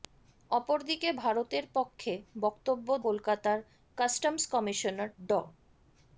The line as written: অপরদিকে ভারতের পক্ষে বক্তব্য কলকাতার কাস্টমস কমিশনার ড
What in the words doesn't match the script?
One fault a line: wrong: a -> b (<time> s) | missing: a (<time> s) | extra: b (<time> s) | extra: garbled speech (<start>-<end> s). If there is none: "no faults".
no faults